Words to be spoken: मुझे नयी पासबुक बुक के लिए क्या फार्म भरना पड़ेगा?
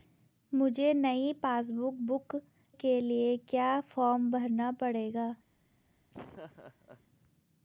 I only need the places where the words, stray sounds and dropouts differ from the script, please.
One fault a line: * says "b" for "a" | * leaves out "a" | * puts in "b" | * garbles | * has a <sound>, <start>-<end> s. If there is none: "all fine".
* has a laugh, 6.1-7.1 s